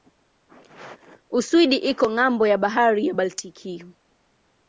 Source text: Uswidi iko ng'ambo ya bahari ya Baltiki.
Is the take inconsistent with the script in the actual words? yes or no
no